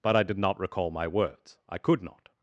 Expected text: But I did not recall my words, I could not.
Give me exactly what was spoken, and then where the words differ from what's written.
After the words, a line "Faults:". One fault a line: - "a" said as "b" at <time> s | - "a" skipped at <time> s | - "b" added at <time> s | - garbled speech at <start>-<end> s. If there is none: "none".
But I did not recall my words, I could not.
Faults:
none